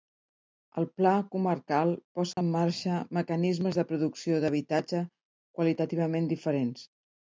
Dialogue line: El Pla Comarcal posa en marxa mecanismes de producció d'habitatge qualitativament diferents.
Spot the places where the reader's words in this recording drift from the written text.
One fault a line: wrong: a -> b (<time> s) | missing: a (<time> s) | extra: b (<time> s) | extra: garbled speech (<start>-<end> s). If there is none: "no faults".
no faults